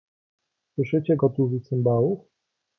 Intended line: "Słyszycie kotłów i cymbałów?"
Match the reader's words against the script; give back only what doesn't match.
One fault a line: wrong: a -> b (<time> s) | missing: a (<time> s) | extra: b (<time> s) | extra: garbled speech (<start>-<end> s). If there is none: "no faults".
no faults